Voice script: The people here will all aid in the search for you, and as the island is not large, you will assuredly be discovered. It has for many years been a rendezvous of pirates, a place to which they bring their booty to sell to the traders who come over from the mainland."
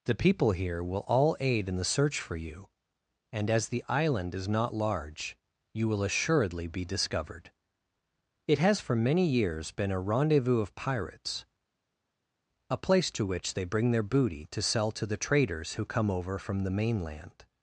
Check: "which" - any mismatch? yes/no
no